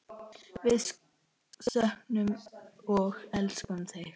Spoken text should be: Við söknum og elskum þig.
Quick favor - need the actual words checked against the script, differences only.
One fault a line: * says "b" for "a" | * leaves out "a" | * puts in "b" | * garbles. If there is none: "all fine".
all fine